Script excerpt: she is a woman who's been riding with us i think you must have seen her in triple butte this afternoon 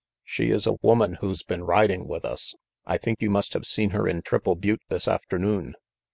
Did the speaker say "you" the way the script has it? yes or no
yes